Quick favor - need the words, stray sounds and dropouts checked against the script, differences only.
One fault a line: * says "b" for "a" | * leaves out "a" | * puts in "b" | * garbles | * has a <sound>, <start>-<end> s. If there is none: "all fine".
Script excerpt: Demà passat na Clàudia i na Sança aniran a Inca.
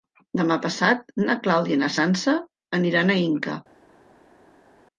all fine